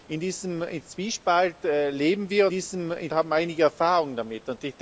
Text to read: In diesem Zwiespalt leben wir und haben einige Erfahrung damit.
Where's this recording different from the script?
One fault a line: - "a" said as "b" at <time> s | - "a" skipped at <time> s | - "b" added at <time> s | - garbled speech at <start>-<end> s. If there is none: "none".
- "und" said as "diesem" at 2.5 s